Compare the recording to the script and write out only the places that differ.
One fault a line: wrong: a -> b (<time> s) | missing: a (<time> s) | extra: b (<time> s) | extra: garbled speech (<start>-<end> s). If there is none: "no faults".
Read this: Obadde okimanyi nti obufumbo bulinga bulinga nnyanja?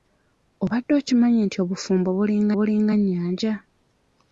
no faults